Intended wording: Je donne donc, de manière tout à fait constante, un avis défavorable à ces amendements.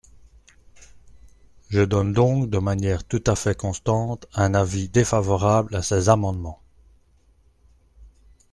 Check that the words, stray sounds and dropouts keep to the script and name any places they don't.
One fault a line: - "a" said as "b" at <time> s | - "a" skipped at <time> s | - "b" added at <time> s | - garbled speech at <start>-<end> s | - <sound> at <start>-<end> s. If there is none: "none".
none